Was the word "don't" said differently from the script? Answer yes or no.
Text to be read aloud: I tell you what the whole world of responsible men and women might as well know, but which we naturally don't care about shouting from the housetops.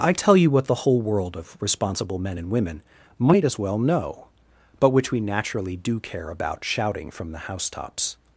yes